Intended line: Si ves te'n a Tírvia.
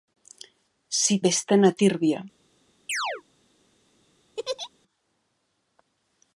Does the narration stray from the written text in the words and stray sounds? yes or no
yes